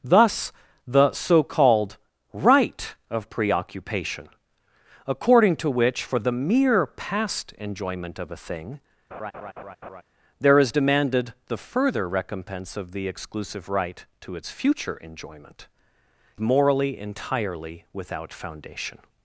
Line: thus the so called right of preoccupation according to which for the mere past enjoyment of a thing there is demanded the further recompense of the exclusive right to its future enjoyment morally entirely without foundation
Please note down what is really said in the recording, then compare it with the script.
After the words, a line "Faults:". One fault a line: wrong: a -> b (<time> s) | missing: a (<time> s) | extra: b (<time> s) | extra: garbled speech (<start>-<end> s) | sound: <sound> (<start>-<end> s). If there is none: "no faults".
thus the so called right of preoccupation according to which for the mere past enjoyment of a thing there is demanded the further recompense of the exclusive right to its future enjoyment morally entirely without foundation
Faults:
sound: laugh (9.1-10.0 s)